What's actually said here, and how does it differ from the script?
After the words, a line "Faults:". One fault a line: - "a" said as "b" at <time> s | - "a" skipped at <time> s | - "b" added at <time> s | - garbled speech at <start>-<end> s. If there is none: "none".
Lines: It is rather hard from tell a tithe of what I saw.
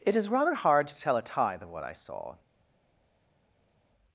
It is rather hard to tell a tithe of what I saw.
Faults:
- "from" said as "to" at 0.9 s